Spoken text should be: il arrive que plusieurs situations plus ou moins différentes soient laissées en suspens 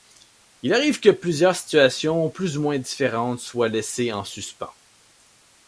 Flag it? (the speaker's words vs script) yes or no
no